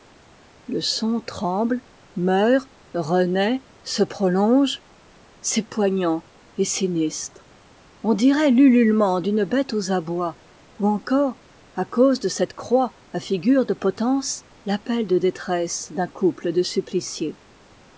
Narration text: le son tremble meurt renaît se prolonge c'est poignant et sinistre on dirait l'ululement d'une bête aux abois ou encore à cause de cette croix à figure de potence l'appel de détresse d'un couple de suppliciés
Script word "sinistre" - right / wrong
right